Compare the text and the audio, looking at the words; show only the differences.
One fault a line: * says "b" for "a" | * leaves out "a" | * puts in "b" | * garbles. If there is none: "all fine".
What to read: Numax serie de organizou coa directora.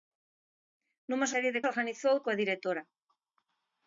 all fine